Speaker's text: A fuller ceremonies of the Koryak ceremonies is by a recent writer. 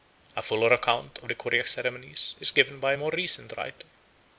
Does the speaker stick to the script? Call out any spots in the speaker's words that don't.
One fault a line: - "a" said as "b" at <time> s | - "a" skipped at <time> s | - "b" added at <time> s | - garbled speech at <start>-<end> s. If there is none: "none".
- "ceremonies" said as "account" at 0.7 s
- "given" added at 2.5 s
- "more" added at 3.0 s